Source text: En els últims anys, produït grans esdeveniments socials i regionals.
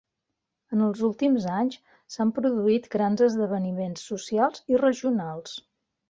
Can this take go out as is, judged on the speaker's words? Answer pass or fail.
fail